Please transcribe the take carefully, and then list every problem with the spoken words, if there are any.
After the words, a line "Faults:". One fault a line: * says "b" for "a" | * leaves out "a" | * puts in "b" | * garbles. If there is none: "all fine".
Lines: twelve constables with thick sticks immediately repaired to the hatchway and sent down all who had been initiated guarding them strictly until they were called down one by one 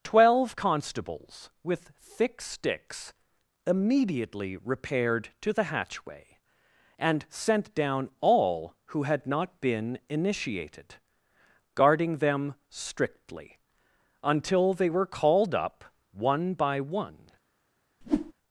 twelve constables with thick sticks immediately repaired to the hatchway and sent down all who had not been initiated guarding them strictly until they were called up one by one
Faults:
* puts in "not"
* says "up" for "down"